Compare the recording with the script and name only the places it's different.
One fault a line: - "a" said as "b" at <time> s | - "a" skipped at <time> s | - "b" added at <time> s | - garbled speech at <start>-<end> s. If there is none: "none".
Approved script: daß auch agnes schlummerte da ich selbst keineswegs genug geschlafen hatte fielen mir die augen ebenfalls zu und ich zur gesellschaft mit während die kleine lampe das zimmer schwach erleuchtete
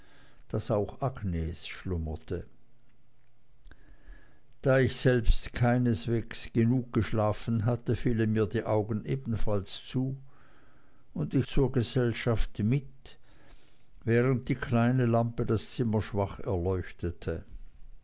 none